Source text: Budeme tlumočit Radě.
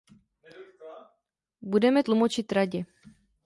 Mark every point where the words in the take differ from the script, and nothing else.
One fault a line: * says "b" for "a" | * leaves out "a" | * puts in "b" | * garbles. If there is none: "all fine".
all fine